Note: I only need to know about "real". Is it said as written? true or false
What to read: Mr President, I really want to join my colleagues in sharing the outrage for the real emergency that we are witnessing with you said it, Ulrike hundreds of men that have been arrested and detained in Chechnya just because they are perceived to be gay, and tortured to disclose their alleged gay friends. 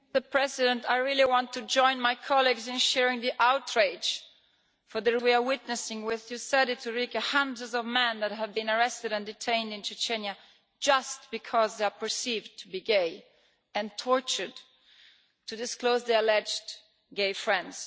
false